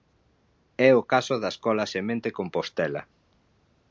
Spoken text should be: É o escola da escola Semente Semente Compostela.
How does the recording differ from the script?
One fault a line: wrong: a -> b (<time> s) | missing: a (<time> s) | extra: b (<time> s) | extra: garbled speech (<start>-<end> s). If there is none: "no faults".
wrong: escola -> caso (1.1 s)
missing: Semente (2.3 s)